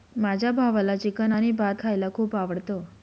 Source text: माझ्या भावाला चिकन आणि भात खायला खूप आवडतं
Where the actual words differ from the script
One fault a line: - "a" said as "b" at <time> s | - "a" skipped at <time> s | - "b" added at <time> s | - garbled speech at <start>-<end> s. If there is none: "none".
none